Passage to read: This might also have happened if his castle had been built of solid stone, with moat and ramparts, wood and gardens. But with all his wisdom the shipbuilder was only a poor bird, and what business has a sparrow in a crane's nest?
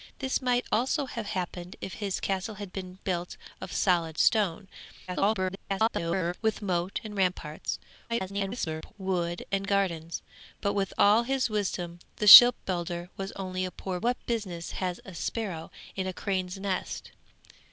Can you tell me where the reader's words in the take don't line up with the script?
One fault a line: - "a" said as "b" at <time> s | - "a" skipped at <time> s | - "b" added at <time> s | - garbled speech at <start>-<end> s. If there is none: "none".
- garbled speech at 5.1-6.3 s
- garbled speech at 8.1-8.9 s
- "bird and" skipped at 14.0 s